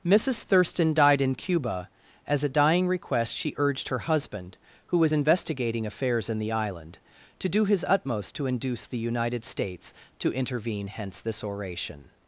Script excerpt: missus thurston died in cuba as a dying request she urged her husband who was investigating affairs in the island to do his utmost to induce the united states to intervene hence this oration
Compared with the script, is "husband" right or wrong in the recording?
right